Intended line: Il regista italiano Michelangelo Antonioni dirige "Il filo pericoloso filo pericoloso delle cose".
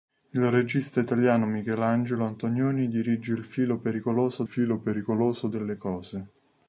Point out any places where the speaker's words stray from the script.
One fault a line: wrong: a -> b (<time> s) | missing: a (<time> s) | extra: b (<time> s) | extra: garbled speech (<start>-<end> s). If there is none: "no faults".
no faults